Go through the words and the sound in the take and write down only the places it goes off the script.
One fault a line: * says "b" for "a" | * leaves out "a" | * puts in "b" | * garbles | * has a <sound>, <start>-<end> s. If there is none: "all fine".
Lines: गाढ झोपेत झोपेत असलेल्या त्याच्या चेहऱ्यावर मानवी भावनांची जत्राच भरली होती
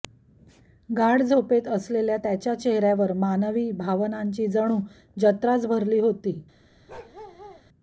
* leaves out "झोपेत"
* puts in "जणू"
* has a bark, 6.9-7.6 s